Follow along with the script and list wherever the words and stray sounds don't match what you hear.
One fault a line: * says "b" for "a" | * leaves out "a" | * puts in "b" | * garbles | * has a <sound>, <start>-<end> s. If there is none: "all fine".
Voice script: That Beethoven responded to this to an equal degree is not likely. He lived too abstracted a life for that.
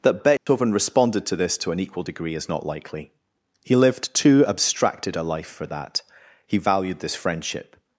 * has a dropout, 0.4-0.5 s
* puts in "He valued this friendship"